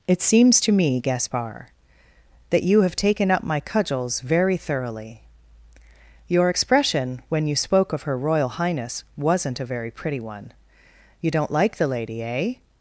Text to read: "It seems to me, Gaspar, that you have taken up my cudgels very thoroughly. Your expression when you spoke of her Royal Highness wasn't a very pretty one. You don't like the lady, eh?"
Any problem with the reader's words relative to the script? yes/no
no